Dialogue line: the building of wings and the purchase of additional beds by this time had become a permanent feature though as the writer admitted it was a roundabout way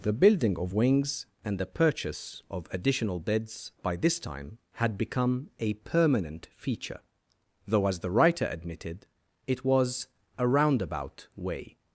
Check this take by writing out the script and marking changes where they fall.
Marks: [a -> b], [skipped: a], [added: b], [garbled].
the building of wings and the purchase of additional beds by this time had become a permanent feature though as the writer admitted it was a roundabout way